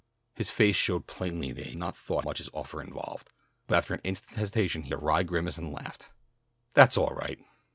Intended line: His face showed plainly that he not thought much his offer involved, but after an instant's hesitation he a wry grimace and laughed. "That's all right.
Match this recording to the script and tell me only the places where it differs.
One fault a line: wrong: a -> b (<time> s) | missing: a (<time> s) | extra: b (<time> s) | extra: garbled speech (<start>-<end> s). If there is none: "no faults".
no faults